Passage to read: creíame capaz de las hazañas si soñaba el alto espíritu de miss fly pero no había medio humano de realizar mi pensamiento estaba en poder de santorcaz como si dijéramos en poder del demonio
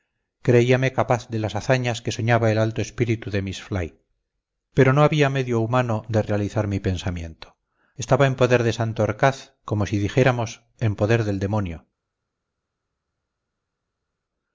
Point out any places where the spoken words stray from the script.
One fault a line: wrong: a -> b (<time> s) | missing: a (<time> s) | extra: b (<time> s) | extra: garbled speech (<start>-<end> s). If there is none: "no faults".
wrong: si -> que (2.0 s)